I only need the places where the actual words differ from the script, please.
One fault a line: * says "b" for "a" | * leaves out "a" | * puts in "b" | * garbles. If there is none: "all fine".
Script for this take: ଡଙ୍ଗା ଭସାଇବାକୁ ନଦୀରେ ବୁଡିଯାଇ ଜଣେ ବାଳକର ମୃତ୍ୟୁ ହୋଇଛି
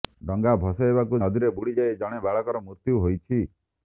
all fine